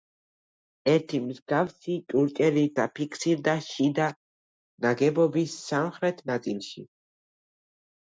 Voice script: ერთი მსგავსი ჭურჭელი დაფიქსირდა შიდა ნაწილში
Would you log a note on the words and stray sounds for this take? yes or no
yes